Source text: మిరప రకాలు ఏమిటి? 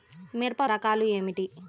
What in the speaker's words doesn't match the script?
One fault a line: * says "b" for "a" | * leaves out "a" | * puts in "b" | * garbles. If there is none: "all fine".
all fine